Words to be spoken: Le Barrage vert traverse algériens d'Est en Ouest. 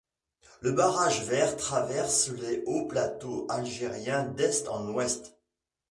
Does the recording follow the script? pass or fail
fail